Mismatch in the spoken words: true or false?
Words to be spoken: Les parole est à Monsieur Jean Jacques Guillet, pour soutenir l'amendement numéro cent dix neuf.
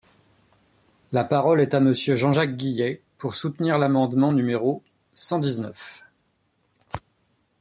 true